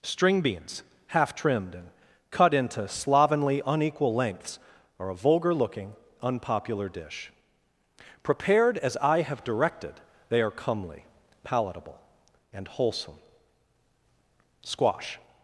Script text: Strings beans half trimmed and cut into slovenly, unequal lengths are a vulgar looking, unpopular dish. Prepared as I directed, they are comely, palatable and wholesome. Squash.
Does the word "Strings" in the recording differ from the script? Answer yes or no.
yes